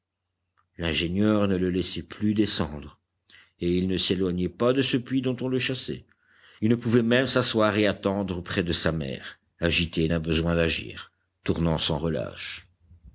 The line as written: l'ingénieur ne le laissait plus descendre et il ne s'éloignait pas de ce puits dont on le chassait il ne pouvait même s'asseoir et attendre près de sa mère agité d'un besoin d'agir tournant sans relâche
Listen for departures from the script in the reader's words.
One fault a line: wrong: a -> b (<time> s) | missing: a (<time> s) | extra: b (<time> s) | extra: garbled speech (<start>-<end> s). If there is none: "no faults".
no faults